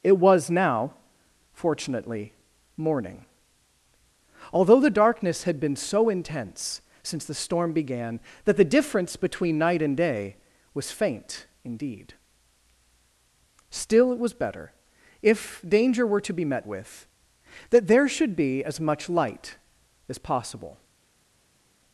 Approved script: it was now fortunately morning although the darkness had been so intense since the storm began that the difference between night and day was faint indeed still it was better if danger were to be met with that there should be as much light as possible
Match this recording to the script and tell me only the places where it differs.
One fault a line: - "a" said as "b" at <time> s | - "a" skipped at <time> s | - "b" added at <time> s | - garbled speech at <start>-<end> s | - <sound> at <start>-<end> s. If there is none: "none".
none